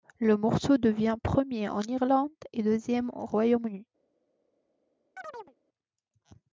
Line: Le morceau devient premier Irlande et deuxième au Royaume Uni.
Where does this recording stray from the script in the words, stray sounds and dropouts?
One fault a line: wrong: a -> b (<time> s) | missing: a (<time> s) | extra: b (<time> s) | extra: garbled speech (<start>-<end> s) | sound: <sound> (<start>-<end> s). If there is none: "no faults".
extra: en (1.7 s)
sound: chirp (5.2-5.6 s)